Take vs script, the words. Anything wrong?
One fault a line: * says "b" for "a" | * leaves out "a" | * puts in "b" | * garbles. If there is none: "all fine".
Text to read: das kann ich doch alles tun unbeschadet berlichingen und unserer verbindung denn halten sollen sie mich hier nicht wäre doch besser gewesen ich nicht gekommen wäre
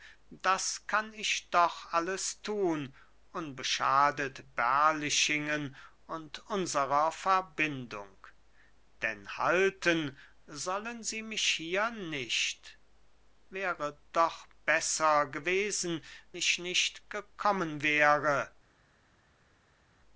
all fine